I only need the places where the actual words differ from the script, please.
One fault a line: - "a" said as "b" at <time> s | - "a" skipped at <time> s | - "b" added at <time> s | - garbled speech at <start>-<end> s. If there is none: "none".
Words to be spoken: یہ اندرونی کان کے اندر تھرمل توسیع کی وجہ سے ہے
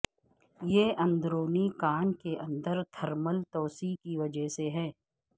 none